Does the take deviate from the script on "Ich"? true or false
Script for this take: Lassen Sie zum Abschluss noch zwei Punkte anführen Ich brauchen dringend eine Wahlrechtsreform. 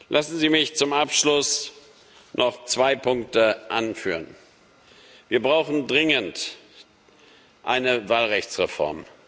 true